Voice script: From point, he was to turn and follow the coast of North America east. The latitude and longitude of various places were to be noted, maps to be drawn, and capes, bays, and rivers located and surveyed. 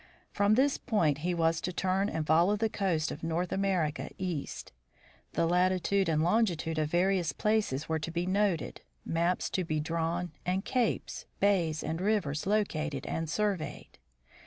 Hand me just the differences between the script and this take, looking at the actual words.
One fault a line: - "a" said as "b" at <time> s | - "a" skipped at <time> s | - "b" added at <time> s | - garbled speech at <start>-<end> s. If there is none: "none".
- "this" added at 0.6 s